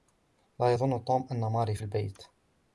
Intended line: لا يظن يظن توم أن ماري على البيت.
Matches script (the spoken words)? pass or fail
fail